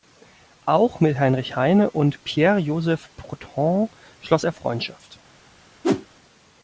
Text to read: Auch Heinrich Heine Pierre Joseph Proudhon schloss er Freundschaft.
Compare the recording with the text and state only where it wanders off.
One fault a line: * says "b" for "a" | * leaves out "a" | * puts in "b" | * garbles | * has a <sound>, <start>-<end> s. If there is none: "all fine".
* puts in "mit"
* puts in "und"
* has a whoosh, 5.8-6.1 s